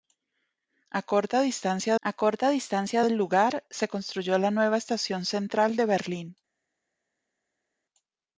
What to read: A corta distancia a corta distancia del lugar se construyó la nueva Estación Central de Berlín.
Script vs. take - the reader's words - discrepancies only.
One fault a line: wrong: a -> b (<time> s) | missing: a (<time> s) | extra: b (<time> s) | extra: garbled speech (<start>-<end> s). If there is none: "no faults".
no faults